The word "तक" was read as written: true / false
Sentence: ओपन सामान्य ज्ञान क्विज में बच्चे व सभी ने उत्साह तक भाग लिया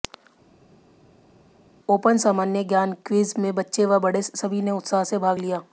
false